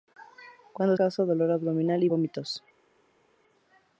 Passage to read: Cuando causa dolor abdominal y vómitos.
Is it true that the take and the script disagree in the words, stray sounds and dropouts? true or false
false